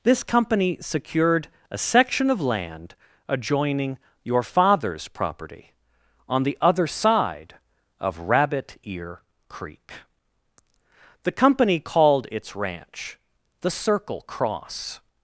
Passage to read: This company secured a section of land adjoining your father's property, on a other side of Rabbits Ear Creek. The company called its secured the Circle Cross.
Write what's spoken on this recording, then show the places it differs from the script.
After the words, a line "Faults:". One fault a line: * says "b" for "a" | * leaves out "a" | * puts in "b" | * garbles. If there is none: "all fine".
This company secured a section of land adjoining your father's property, on the other side of Rabbit Ear Creek. The company called its ranch the Circle Cross.
Faults:
* says "the" for "a"
* says "Rabbit" for "Rabbits"
* says "ranch" for "secured"